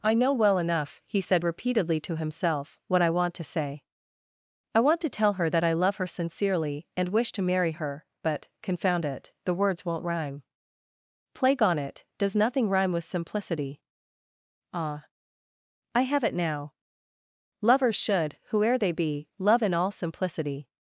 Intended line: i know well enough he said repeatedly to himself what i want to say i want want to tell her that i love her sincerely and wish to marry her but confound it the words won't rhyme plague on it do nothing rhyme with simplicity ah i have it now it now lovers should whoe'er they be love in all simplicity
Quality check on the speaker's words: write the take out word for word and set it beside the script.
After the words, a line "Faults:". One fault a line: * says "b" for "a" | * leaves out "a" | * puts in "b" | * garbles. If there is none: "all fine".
i know well enough he said repeatedly to himself what i want to say i want to tell her that i love her sincerely and wish to marry her but confound it the words won't rhyme plague on it does nothing rhyme with simplicity ah i have it now lovers should whoe'er they be love in all simplicity
Faults:
* leaves out "want"
* says "does" for "do"
* leaves out "it now"